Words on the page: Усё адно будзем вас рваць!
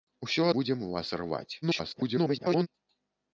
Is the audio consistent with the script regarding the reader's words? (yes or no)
no